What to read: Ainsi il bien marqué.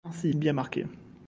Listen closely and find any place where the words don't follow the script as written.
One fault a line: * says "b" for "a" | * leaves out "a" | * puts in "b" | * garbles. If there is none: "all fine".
all fine